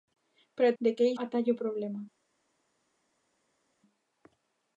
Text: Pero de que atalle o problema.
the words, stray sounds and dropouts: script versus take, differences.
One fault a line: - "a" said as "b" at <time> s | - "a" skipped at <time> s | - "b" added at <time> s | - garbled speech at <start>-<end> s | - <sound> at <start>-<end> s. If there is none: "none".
none